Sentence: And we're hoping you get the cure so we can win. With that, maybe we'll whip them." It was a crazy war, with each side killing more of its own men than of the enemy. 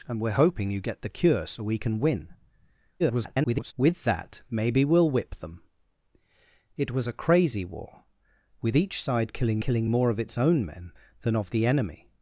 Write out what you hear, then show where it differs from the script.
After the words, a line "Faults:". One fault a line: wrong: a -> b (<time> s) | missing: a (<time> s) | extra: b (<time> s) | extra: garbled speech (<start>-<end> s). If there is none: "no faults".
And we're hoping you get the cure so we can win. [garbled] With that, maybe we'll whip them." It was a crazy war, with each side killing killing more of its own men than of the enemy.
Faults:
extra: garbled speech (3.0-3.7 s)
extra: killing (9.6 s)